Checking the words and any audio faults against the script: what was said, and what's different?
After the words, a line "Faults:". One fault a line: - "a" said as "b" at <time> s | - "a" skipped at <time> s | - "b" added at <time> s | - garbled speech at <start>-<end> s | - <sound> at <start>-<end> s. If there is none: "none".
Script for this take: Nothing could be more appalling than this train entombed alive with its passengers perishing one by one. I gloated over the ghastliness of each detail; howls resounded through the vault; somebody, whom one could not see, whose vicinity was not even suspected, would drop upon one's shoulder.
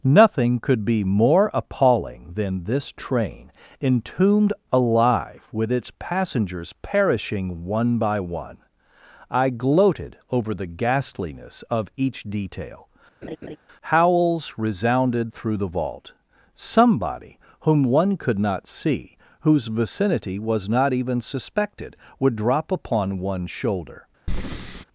Nothing could be more appalling than this train entombed alive with its passengers perishing one by one. I gloated over the ghastliness of each detail; howls resounded through the vault; somebody, whom one could not see, whose vicinity was not even suspected, would drop upon one's shoulder.
Faults:
- laugh at 13.2-13.6 s
- breath at 24.3-24.8 s